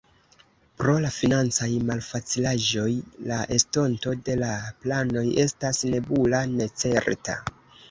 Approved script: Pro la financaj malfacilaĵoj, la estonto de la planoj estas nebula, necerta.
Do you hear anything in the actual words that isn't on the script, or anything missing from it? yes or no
no